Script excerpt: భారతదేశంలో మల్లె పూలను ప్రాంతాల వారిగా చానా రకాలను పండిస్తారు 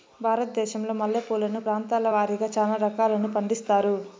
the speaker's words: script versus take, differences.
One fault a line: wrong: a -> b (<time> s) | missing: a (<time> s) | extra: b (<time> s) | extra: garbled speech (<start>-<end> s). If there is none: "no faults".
no faults